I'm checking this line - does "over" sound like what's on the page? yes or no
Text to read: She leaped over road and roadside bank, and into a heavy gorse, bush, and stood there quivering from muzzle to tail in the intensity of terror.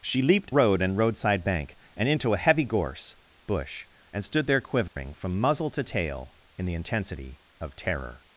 no